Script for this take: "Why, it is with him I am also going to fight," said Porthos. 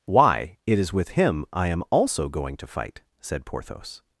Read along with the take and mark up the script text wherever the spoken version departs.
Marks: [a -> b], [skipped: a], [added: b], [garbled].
"Why, it is with him I am also going to fight," said Porthos.